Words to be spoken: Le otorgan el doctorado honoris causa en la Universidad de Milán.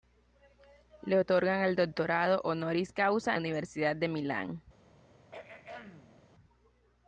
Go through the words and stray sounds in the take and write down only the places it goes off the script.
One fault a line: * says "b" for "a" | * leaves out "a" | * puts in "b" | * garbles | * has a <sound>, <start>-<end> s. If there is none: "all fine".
* leaves out "en"
* has a throat clearing, 5.2-6.2 s